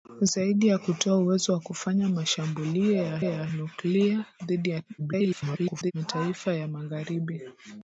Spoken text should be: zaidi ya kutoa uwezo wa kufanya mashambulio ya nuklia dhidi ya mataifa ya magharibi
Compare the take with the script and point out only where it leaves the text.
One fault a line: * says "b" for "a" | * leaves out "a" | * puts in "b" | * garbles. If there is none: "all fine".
* puts in "ya"
* garbles